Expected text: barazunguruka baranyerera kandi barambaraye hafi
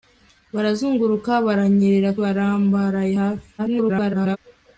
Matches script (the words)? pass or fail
fail